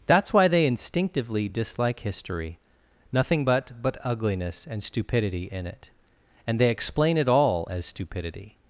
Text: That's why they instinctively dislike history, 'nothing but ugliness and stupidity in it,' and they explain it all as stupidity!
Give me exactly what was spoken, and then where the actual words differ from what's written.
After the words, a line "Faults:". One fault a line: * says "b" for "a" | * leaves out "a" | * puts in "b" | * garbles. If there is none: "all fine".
That's why they instinctively dislike history, 'nothing but but ugliness and stupidity in it,' and they explain it all as stupidity!
Faults:
* puts in "but"